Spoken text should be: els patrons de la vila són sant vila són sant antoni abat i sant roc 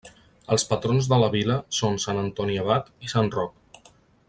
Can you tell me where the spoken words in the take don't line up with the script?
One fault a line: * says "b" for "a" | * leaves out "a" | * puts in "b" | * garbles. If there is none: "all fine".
* leaves out "vila són sant"